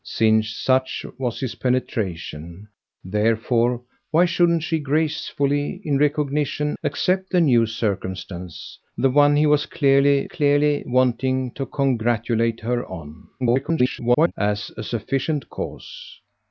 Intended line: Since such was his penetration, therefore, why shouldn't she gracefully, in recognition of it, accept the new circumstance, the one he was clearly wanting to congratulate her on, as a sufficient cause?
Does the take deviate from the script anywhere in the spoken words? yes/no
yes